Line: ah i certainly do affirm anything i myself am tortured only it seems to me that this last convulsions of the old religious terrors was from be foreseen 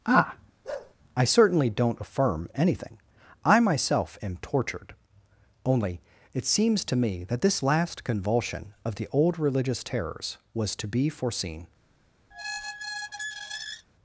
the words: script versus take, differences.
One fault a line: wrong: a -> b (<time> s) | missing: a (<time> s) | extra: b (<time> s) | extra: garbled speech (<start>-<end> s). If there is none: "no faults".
wrong: do -> don't (1.7 s)
wrong: convulsions -> convulsion (8.0 s)
wrong: from -> to (10.8 s)